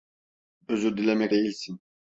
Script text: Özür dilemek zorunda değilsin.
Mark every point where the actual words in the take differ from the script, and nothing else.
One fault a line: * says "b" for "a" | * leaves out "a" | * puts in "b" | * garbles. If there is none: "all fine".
* leaves out "zorunda"